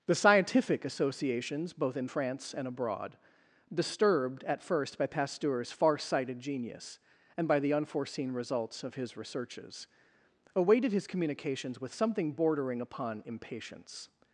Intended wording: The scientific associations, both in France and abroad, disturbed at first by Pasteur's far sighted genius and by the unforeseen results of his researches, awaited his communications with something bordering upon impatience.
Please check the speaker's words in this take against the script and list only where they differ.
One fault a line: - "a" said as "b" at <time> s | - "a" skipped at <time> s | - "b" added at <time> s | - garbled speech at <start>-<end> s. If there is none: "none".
none